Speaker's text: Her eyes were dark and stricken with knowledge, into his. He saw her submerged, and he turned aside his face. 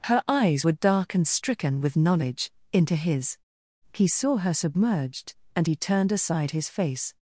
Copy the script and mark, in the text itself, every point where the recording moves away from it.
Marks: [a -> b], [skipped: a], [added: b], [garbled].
Her eyes were dark and stricken with knowledge, into his. He saw her submerged, and he turned aside his face.